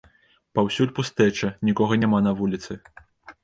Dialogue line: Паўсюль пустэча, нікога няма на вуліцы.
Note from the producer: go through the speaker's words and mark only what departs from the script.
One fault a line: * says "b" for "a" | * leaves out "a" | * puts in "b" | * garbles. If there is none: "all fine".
all fine